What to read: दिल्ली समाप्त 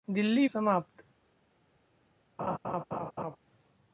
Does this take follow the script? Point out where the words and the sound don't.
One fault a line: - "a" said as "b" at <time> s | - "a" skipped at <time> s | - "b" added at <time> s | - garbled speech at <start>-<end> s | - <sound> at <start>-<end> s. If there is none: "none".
- laugh at 2.4-3.4 s